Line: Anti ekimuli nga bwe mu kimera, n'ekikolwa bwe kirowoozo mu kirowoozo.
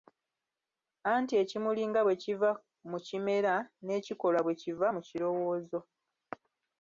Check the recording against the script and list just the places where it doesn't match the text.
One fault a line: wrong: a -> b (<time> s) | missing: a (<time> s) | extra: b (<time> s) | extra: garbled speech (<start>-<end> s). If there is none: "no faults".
extra: kiva (2.2 s)
wrong: kirowoozo -> kiva (4.6 s)